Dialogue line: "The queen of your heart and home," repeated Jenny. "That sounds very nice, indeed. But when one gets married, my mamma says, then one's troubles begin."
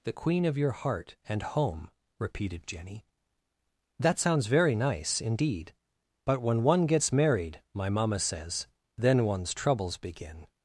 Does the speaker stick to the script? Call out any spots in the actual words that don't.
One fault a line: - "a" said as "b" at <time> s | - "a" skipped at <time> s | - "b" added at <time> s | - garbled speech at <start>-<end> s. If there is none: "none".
none